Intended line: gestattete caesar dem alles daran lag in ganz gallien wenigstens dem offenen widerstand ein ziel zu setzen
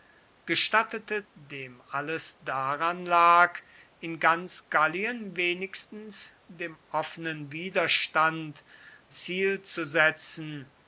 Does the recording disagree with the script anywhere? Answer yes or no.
yes